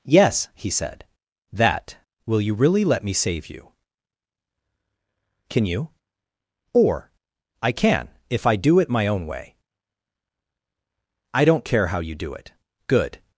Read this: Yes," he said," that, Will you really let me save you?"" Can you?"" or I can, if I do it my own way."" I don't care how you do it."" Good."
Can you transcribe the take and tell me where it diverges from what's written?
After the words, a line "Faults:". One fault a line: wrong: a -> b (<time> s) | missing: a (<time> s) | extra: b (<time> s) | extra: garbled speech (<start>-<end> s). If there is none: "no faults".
Yes," he said," that, Will you really let me save you?"" Can you?"" or I can, if I do it my own way."" I don't care how you do it."" Good."
Faults:
no faults